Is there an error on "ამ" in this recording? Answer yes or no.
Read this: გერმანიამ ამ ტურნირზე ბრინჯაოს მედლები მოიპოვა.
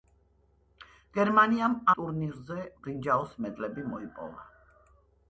yes